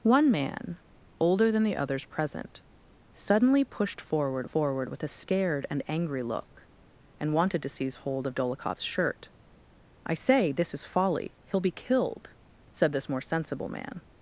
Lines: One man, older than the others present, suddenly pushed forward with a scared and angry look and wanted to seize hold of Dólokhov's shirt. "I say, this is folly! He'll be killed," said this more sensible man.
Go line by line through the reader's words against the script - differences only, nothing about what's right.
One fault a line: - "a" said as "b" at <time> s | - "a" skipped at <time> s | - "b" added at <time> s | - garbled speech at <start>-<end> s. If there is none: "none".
- "forward" added at 4.4 s